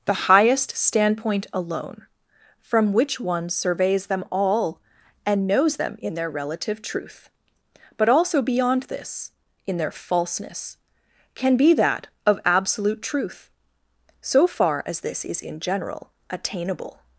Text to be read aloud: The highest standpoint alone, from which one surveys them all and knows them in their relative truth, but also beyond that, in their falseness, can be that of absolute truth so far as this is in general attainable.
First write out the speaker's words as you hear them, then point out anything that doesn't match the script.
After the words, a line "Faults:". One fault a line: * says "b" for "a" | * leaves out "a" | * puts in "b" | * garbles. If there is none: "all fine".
The highest standpoint alone, from which one surveys them all and knows them in their relative truth, but also beyond this, in their falseness, can be that of absolute truth so far as this is in general attainable.
Faults:
* says "this" for "that"